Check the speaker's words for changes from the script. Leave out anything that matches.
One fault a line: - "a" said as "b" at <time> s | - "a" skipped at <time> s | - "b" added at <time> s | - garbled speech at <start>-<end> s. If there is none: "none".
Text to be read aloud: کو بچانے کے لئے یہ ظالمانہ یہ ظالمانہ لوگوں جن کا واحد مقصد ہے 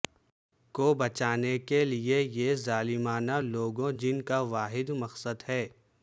- "یہ ظالمانہ" skipped at 3.4 s